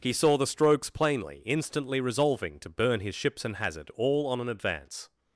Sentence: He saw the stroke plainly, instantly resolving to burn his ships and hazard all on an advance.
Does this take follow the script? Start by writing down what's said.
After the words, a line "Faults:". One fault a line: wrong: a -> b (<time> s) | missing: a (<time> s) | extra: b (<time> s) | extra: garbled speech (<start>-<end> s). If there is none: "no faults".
He saw the strokes plainly, instantly resolving to burn his ships and hazard all on an advance.
Faults:
wrong: stroke -> strokes (0.5 s)